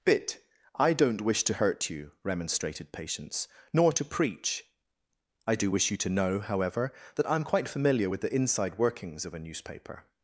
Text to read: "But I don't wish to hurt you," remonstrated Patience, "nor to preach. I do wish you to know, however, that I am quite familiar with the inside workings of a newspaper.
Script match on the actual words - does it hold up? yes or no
no